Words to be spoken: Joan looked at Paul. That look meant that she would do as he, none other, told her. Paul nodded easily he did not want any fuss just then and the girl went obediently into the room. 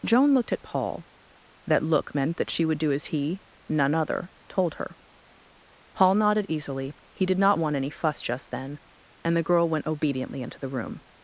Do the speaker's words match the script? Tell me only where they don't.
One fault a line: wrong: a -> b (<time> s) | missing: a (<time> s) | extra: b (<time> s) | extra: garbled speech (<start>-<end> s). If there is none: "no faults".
no faults